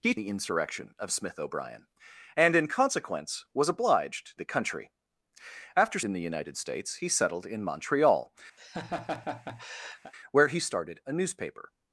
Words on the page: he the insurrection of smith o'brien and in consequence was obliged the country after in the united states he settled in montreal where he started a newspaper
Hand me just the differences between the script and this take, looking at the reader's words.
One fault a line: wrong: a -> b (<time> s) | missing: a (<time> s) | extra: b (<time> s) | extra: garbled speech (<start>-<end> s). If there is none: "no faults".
no faults